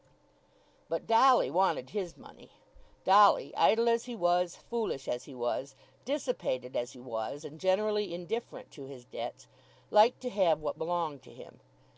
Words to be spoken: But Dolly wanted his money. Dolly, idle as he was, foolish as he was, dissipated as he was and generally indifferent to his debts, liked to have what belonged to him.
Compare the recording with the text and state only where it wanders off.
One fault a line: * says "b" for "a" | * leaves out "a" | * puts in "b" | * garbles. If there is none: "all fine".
all fine